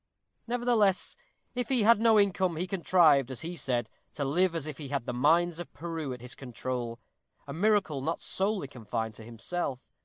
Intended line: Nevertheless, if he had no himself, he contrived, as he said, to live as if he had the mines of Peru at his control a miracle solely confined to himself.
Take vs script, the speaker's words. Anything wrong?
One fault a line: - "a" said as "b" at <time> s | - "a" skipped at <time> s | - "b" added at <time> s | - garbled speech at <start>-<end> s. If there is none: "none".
- "himself" said as "income" at 2.2 s
- "not" added at 8.0 s